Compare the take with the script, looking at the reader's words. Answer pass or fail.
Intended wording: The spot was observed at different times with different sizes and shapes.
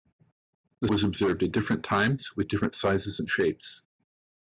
fail